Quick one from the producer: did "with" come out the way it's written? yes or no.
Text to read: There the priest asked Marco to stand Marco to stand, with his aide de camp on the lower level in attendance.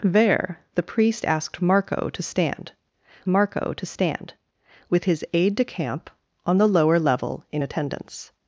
yes